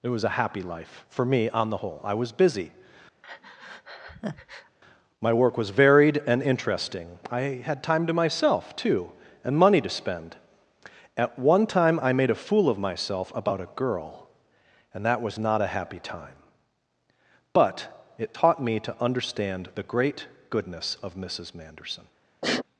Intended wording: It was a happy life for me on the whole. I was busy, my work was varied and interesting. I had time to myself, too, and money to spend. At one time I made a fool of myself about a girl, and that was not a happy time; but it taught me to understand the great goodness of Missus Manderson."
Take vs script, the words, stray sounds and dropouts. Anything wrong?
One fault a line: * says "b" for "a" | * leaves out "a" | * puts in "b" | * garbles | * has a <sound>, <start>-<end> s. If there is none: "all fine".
* has a breath, 3.2-4.8 s
* has a sniff, 22.4-22.6 s